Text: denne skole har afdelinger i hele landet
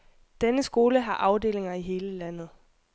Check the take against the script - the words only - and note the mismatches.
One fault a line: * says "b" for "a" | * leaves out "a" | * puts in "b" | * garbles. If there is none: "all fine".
all fine